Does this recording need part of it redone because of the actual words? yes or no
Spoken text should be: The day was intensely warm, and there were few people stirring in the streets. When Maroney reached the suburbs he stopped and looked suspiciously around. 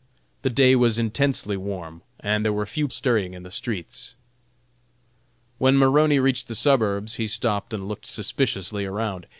yes